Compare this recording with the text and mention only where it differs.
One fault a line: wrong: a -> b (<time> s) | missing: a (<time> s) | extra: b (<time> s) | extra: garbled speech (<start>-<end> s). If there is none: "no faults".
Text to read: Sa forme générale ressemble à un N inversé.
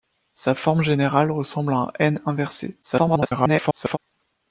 extra: garbled speech (2.8-4.0 s)